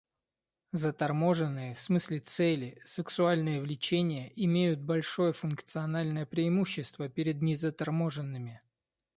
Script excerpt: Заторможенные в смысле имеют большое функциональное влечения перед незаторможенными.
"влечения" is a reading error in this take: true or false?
true